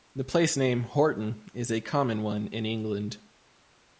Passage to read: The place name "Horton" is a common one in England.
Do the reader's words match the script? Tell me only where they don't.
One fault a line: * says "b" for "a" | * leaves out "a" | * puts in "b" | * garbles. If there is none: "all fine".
all fine